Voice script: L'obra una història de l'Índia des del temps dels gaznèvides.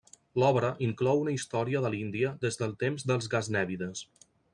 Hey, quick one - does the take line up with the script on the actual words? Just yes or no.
no